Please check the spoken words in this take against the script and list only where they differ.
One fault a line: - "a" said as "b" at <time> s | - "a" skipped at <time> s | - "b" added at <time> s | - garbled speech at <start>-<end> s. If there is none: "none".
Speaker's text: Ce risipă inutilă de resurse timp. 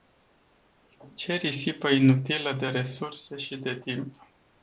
- "și de" added at 3.4 s